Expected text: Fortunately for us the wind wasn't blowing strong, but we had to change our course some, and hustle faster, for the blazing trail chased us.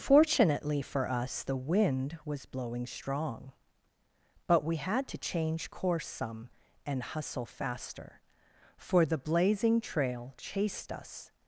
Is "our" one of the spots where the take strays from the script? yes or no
yes